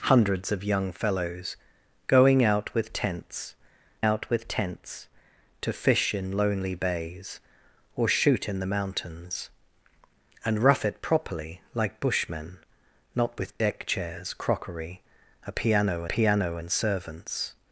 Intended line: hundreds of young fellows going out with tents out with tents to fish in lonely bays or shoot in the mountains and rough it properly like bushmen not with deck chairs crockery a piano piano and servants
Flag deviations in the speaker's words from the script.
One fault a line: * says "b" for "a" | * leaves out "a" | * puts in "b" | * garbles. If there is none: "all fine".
all fine